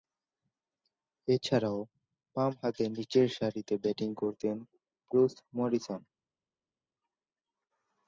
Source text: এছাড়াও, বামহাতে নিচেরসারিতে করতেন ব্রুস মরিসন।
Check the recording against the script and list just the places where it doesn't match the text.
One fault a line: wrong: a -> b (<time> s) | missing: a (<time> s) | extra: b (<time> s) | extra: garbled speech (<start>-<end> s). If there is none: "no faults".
extra: ব্যাটিং (3.8 s)